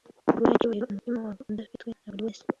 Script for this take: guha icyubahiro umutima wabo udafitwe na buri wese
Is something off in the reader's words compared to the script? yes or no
no